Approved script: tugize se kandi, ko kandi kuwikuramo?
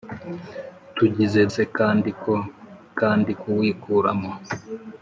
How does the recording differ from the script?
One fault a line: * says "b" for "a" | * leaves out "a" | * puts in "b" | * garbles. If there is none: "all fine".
all fine